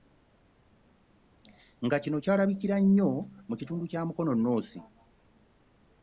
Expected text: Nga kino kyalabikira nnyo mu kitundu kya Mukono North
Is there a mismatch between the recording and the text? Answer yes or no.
no